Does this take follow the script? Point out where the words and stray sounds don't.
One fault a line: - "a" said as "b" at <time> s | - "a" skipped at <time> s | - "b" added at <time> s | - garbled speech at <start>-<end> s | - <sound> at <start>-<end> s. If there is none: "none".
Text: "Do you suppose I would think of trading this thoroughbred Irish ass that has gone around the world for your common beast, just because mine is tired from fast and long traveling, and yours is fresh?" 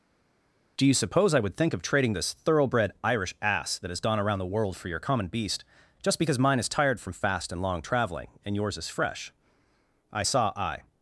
- "I saw I" added at 10.1 s